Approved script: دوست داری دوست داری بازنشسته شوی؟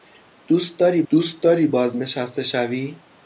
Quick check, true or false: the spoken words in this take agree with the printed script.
true